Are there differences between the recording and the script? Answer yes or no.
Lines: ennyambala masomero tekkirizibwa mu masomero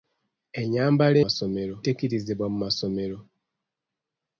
no